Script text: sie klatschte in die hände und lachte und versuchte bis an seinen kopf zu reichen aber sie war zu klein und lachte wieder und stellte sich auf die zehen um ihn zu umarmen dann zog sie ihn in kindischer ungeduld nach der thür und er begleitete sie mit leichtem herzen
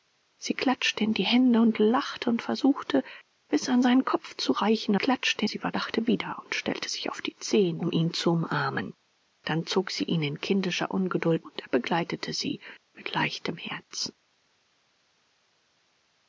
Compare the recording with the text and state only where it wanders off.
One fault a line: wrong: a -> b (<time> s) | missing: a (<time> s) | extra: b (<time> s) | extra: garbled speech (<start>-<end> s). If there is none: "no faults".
wrong: aber -> klatschte (5.0 s)
missing: zu klein und (5.8 s)
missing: nach der thür (11.5 s)